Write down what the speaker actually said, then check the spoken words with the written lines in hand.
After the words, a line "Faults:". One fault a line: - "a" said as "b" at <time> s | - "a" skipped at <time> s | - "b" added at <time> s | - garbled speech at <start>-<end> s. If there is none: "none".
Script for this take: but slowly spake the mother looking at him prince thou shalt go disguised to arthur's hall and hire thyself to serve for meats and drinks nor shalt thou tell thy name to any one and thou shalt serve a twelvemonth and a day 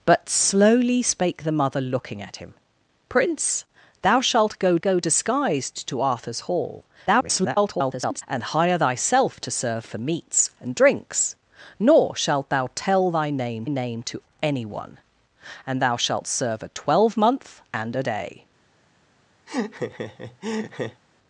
but slowly spake the mother looking at him prince thou shalt go go disguised to arthur's hall [garbled] and hire thyself to serve for meats and drinks nor shalt thou tell thy name name to any one and thou shalt serve a twelvemonth and a day
Faults:
- "go" added at 4.8 s
- garbled speech at 7.1-8.2 s
- "name" added at 13.7 s